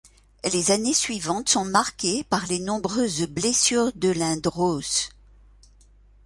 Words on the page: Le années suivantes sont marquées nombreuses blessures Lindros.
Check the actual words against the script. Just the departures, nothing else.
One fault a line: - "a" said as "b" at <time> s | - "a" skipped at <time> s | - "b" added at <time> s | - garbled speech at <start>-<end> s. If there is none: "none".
- "Le" said as "Les" at 0.5 s
- "par les" added at 2.3 s
- "de" added at 3.9 s